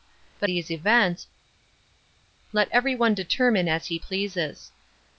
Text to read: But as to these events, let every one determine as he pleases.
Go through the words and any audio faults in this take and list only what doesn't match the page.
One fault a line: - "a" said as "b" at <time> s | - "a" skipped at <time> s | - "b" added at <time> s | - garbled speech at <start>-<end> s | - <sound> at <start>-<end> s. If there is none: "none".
- "as to" skipped at 0.5 s